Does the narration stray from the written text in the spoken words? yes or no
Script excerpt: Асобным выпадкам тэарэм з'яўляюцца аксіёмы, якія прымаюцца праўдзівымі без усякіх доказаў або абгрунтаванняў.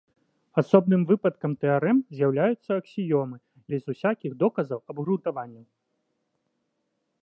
yes